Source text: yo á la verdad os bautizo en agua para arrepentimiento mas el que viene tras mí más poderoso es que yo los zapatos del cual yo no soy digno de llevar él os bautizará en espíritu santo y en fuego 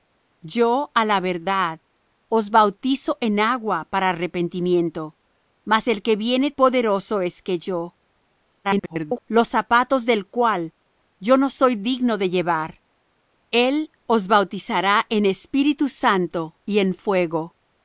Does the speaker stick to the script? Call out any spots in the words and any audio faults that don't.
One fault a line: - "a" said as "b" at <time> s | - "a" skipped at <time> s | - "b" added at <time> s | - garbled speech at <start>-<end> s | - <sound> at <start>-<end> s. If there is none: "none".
- "tras mí más" skipped at 6.5 s
- garbled speech at 8.6-9.2 s